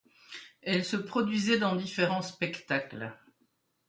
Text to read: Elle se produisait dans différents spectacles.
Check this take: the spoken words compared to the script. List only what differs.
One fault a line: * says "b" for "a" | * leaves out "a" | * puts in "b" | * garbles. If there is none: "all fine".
all fine